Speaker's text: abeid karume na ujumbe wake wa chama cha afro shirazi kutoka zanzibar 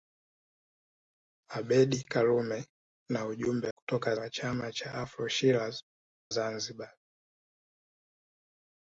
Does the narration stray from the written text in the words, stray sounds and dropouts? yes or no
yes